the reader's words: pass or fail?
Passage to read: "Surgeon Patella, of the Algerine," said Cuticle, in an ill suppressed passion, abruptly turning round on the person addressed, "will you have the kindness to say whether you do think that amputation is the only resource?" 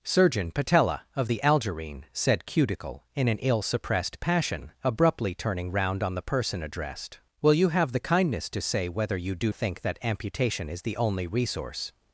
pass